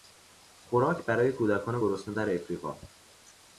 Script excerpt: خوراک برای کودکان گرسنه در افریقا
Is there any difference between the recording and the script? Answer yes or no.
no